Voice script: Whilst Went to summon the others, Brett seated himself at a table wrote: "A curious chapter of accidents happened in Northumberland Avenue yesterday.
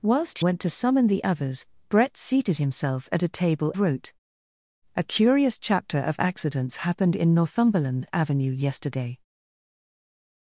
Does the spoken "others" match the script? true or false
true